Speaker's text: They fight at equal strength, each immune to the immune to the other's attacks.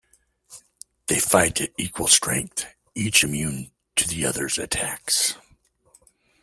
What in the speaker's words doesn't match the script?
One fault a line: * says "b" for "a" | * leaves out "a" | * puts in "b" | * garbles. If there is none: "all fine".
* leaves out "immune to the"